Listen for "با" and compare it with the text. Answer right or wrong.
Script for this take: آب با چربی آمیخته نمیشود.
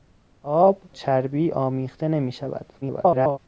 wrong